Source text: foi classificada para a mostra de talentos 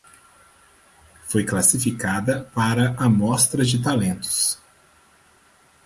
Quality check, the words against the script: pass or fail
pass